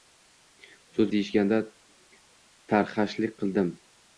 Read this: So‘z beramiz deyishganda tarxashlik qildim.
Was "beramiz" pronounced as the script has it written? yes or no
no